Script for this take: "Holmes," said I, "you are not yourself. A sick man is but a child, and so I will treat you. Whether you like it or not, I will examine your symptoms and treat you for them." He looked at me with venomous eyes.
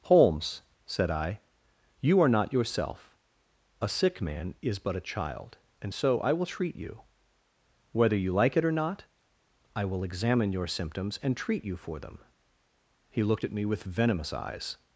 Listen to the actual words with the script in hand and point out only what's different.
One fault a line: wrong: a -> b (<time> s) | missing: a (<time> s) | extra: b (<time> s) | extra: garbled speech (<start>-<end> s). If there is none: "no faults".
no faults